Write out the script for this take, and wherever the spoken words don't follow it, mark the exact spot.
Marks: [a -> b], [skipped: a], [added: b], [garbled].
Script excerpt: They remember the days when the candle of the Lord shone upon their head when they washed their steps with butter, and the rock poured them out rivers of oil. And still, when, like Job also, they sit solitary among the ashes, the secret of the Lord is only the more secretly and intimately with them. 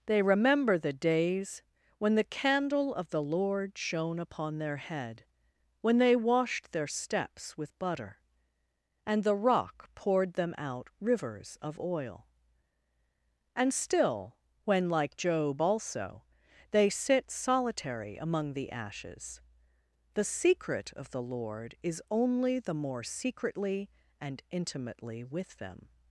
They remember the days when the candle of the Lord shone upon their head when they washed their steps with butter, and the rock poured them out rivers of oil. And still, when, like Job also, they sit solitary among the ashes, the secret of the Lord is only the more secretly and intimately with them.